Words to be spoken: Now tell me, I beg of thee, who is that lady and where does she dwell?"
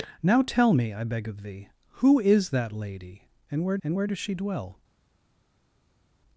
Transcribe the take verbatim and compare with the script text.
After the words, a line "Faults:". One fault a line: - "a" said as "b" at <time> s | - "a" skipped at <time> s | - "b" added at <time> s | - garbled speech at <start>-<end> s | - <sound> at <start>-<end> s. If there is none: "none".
Now tell me, I beg of thee, who is that lady and where and where does she dwell?"
Faults:
- "and where" added at 3.8 s